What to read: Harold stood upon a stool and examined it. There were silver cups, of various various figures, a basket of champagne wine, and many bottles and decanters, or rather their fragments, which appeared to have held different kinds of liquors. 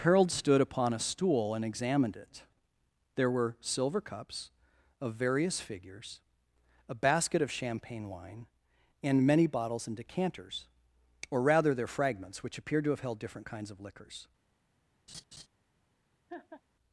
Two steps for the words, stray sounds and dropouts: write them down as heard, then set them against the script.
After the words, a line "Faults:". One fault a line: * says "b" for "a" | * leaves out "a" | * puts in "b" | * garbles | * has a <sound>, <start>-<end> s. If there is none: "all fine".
Harold stood upon a stool and examined it. There were silver cups, of various figures, a basket of champagne wine, and many bottles and decanters, or rather their fragments, which appeared to have held different kinds of liquors.
Faults:
* leaves out "various"
* has a laugh, 15.1-15.5 s
* has a laugh, 16.3-16.6 s